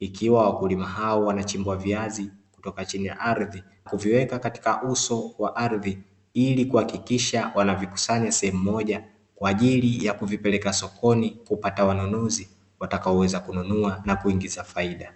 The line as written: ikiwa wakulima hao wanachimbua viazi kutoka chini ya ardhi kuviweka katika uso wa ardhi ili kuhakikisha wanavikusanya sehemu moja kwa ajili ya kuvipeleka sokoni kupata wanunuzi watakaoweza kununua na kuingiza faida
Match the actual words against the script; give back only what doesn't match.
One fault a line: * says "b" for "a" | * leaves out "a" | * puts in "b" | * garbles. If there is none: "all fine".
all fine